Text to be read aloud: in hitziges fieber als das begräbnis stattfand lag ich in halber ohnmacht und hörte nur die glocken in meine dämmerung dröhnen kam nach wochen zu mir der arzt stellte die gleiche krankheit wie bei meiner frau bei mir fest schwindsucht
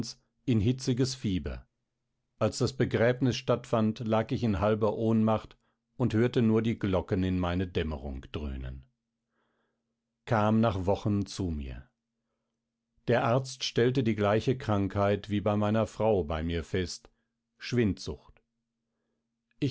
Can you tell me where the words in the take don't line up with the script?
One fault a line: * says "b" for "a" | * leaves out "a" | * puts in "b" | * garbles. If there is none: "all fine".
all fine